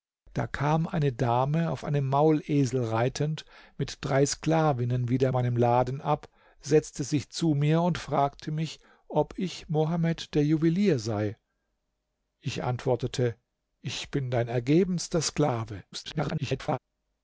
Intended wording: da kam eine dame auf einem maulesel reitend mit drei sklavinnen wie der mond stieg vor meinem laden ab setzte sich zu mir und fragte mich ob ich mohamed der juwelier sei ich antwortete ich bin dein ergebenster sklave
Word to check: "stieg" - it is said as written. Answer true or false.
false